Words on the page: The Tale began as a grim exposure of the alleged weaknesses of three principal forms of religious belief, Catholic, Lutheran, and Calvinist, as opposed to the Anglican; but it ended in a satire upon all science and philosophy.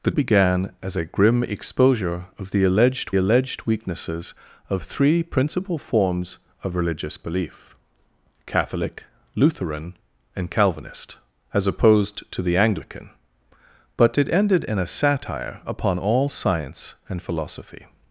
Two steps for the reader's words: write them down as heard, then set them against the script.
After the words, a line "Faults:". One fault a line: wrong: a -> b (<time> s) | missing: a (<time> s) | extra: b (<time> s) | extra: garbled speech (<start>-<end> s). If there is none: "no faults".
The Began as a grim exposure of the alleged alleged weaknesses of three principal forms of religious belief, Catholic, Lutheran, and Calvinist, as opposed to the Anglican; but it ended in a satire upon all science and philosophy.
Faults:
missing: Tale (0.1 s)
extra: alleged (3.1 s)